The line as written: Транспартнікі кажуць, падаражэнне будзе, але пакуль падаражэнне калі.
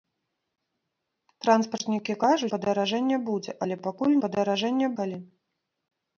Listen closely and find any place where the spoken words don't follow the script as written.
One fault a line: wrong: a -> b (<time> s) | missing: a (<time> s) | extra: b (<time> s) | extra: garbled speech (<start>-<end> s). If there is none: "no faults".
no faults